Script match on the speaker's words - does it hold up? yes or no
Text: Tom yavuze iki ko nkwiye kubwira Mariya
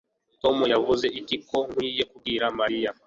yes